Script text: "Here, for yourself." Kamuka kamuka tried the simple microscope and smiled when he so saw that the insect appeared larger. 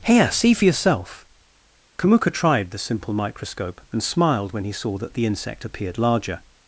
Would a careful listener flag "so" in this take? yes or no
yes